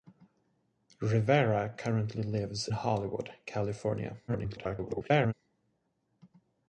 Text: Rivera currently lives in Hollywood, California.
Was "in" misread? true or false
true